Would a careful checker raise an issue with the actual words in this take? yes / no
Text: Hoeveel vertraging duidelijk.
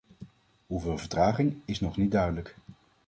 yes